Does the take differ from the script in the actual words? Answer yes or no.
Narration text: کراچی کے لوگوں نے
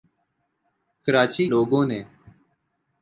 yes